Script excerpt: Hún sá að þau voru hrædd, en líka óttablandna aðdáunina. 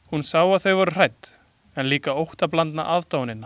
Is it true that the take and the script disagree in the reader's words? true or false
false